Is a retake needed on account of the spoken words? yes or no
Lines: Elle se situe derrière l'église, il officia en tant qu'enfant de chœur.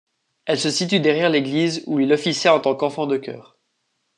yes